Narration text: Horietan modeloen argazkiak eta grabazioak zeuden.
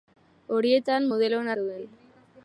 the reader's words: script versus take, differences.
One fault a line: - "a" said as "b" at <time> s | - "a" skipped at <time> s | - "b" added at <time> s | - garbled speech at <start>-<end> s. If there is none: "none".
- "argazkiak eta grabazioak" skipped at 1.5 s